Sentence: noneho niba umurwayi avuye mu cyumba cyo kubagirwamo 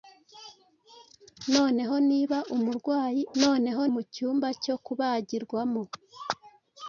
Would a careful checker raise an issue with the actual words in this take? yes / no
yes